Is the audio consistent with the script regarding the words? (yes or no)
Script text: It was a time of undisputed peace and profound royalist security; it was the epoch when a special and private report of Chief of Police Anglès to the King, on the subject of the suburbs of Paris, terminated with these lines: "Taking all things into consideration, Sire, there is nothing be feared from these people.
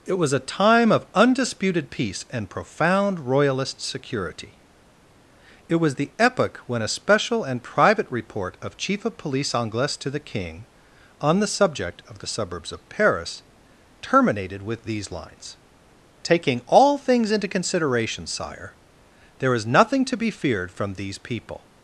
no